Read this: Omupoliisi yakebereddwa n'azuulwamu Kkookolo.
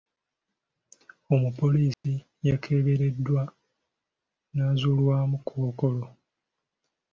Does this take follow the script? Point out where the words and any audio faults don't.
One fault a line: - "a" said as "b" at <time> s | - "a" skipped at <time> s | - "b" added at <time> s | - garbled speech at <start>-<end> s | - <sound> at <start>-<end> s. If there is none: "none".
- dropout at 1.9-2.0 s